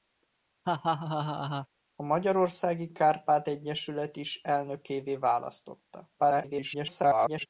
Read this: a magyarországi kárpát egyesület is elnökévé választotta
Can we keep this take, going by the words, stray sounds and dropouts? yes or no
no